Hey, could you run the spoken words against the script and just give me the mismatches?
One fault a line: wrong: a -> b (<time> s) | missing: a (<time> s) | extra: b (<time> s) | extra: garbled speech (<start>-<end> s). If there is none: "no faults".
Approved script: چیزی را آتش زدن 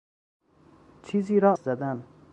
missing: آتش (1.5 s)